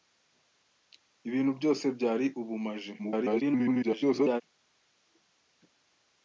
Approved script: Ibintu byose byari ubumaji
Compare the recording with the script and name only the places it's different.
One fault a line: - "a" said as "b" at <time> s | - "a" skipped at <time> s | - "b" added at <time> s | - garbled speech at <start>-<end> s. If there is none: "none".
- garbled speech at 3.0-4.4 s